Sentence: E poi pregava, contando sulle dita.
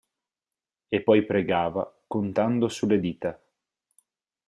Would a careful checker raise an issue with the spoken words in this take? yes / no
no